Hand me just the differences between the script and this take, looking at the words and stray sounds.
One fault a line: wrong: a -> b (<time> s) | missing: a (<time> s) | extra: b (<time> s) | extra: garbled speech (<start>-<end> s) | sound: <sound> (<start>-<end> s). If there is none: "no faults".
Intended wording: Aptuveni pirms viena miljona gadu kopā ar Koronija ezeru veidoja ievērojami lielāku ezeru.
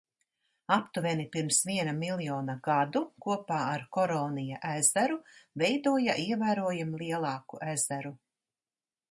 no faults